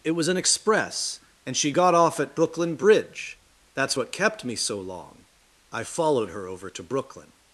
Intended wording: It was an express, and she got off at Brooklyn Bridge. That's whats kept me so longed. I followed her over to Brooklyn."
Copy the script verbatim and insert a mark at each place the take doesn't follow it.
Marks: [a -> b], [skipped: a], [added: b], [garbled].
It was an express, and she got off at Brooklyn Bridge. That's [whats -> what] kept me so [longed. -> long] I followed her over to Brooklyn."